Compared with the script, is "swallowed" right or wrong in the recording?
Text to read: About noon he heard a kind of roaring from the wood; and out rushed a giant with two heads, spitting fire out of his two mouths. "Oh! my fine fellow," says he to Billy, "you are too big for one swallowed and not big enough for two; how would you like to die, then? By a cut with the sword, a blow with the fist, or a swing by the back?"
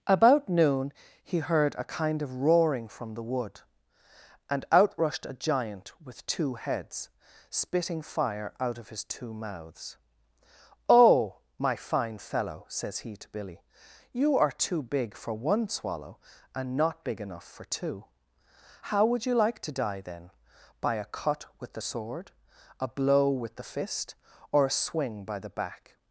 wrong